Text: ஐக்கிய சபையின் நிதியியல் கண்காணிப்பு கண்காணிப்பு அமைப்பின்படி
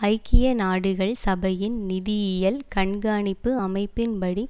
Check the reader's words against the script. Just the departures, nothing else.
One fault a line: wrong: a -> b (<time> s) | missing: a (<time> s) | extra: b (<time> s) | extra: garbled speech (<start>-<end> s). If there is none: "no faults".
extra: நாடுகள் (0.5 s)
missing: கண்காணிப்பு (3.5 s)